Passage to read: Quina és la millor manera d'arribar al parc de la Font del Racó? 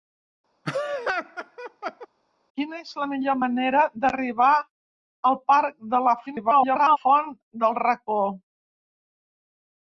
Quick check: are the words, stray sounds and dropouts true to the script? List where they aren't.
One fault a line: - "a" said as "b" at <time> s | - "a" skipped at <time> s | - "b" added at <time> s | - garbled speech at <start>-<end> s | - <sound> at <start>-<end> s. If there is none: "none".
- laugh at 0.6-2.1 s
- garbled speech at 6.3-7.0 s